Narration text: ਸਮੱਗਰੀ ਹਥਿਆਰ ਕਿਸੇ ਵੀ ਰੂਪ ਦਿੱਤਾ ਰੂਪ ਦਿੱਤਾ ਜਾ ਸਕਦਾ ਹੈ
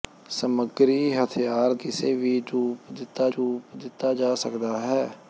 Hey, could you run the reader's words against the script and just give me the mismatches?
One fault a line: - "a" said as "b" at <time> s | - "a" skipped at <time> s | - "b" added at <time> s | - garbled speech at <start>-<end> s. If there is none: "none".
none